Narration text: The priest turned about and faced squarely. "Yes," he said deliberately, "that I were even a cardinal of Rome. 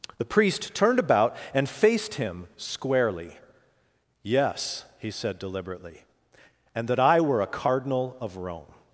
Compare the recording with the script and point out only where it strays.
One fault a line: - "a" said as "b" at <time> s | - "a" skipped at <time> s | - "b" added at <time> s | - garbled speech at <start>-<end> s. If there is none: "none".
- "him" added at 2.1 s
- "and" added at 6.8 s
- "even" skipped at 7.4 s